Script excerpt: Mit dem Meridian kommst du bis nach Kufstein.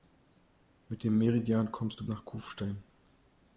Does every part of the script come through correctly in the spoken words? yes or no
no